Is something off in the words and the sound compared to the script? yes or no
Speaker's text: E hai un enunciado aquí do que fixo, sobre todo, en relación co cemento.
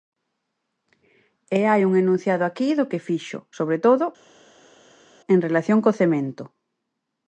no